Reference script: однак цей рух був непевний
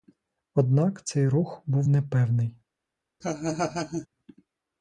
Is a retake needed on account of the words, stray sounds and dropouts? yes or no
yes